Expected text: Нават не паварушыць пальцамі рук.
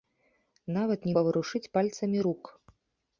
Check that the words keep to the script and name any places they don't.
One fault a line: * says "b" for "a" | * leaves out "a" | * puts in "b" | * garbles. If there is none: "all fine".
all fine